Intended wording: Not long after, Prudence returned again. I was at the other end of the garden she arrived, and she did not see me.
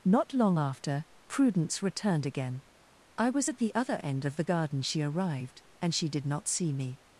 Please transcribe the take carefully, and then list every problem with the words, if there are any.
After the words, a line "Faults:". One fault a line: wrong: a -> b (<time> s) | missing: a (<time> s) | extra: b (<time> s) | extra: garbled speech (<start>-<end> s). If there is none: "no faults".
Not long after, Prudence returned again. I was at the other end of the garden she arrived, and she did not see me.
Faults:
no faults